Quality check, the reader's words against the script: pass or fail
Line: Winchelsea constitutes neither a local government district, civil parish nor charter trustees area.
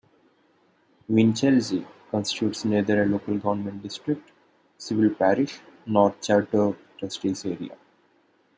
pass